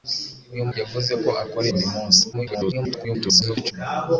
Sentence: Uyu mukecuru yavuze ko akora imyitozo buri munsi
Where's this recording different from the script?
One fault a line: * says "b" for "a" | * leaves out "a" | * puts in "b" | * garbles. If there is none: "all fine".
* leaves out "mukecuru"
* leaves out "imyitozo"
* garbles